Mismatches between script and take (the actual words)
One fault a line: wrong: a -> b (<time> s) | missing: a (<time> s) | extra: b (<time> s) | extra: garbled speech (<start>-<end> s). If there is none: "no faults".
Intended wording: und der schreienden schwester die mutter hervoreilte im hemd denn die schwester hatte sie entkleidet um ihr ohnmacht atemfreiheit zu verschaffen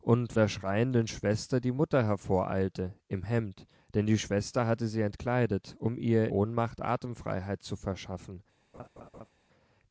no faults